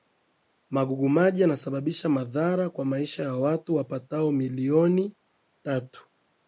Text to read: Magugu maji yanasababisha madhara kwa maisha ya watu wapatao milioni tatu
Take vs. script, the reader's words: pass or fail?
pass